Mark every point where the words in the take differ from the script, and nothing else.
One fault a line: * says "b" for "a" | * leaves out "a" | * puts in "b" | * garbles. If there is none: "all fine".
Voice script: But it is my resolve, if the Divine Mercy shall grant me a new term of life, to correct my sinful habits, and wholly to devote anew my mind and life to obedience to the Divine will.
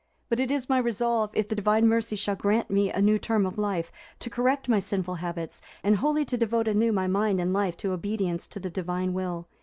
all fine